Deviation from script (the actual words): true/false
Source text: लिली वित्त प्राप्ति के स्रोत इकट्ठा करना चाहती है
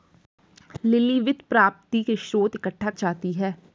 true